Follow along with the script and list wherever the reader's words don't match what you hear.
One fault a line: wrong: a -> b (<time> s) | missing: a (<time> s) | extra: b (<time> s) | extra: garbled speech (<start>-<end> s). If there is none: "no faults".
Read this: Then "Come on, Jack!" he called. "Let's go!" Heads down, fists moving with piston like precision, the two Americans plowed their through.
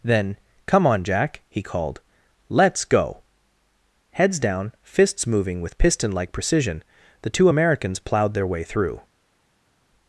extra: way (8.5 s)